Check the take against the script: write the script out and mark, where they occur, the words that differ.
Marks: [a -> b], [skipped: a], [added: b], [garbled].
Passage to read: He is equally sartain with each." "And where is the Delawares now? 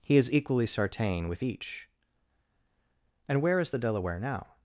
He is equally sartain with each." "And where is the [Delawares -> Delaware] now?